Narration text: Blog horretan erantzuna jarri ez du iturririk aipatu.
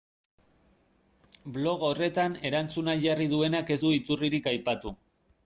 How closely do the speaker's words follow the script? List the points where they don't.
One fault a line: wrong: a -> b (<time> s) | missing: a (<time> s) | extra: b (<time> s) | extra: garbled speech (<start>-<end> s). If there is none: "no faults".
extra: duenak (3.4 s)